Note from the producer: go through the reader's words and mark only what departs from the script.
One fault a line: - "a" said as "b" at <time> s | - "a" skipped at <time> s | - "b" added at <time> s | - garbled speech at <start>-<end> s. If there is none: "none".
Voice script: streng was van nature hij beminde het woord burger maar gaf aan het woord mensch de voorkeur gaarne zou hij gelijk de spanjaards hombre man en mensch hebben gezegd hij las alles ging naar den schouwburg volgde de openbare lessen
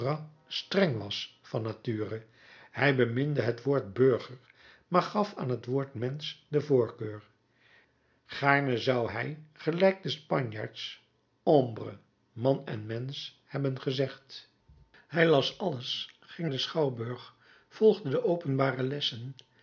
- "naar" skipped at 16.5 s